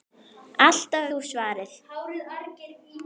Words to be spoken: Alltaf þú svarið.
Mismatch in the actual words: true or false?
false